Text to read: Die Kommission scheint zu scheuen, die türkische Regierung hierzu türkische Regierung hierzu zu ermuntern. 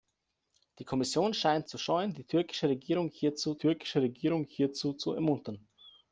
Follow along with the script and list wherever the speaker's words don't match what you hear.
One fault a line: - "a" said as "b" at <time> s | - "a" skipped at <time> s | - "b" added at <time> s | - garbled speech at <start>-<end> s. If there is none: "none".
none